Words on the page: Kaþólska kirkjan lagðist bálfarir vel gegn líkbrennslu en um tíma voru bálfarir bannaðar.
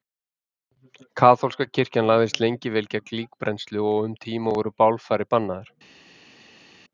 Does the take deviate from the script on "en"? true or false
true